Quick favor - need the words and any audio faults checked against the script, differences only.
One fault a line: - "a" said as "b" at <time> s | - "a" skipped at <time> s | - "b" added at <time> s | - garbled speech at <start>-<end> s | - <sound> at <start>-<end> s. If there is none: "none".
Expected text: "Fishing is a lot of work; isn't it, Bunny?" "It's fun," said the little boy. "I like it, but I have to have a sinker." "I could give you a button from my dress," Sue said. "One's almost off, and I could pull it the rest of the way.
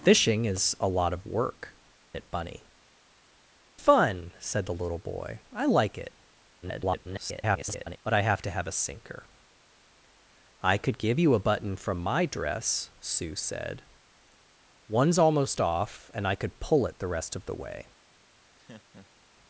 - "isn't" skipped at 1.8 s
- "It's" skipped at 2.7 s
- garbled speech at 6.6-8.0 s
- laugh at 18.6-19.3 s